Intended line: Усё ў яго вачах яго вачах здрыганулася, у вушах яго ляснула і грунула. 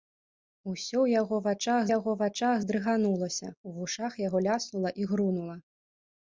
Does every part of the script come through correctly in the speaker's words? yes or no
yes